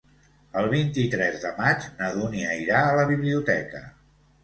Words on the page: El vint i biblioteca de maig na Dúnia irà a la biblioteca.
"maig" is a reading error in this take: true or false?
false